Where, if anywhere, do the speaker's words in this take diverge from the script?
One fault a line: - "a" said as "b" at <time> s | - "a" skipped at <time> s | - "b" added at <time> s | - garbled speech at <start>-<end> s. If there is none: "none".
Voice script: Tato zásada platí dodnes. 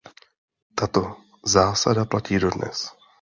none